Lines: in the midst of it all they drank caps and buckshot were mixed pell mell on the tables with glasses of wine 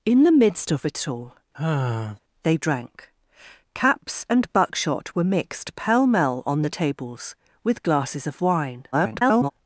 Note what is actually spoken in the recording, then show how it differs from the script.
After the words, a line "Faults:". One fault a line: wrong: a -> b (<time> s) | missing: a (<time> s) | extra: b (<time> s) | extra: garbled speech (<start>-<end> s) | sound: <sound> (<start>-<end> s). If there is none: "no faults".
in the midst of it all they drank caps and buckshot were mixed pell mell on the tables with glasses of wine [garbled]
Faults:
sound: sigh (1.5-2.2 s)
extra: garbled speech (8.9-9.5 s)